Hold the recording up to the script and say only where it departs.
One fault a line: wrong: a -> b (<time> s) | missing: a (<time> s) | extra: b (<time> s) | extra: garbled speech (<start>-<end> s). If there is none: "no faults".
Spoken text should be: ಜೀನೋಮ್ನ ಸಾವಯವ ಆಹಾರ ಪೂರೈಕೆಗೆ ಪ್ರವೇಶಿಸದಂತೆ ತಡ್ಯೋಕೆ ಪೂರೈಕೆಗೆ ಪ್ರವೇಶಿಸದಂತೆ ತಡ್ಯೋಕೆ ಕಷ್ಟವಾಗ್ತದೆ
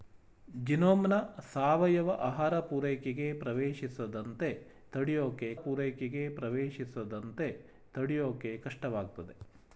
no faults